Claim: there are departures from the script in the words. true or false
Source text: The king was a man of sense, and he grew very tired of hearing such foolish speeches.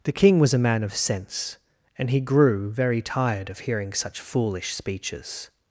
false